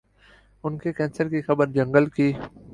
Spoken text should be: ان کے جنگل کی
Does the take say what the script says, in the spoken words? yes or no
no